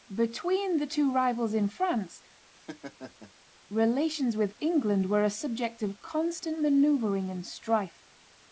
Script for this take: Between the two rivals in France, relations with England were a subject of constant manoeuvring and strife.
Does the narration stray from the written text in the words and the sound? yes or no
yes